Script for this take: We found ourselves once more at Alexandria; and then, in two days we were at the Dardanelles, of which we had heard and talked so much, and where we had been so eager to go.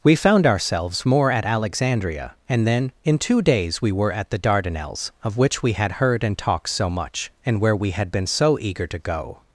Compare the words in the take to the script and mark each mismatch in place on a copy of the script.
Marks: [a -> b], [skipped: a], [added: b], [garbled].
We found ourselves [skipped: once] more at Alexandria; and then, in two days we were at the Dardanelles, of which we had heard and talked so much, and where we had been so eager to go.